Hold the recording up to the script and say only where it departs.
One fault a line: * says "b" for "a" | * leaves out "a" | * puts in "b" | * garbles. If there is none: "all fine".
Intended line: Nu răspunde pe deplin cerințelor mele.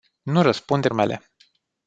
* leaves out "pe deplin cerințelor"